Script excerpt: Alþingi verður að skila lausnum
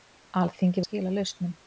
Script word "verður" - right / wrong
wrong